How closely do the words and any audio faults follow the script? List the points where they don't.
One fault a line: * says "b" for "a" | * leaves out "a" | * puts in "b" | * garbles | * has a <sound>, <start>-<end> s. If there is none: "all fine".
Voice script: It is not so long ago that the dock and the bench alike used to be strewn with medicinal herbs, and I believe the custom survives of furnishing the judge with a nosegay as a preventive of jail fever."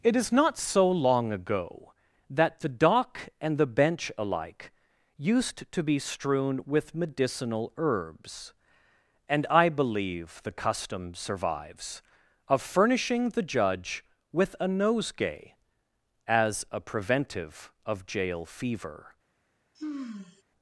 * has a sigh, 19.7-20.4 s